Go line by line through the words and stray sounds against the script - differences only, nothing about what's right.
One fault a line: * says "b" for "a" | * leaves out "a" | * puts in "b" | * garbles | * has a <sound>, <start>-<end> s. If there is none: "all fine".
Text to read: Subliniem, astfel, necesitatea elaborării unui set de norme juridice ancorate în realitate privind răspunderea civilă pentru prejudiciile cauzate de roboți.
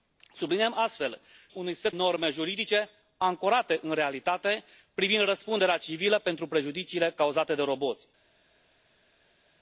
* leaves out "necesitatea elaborării"
* leaves out "de"